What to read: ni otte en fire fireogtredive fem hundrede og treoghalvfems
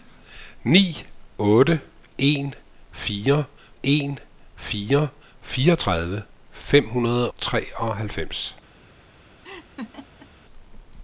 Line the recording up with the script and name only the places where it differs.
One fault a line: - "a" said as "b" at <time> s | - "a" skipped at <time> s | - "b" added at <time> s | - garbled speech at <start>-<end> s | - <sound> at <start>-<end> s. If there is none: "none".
- "en fire" added at 3.8 s
- "og" skipped at 7.3 s
- laugh at 9.4-10.3 s